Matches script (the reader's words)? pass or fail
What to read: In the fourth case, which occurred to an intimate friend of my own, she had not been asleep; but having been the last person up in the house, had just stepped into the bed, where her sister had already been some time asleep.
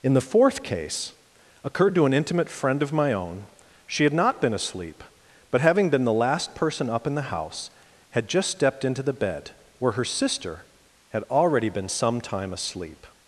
fail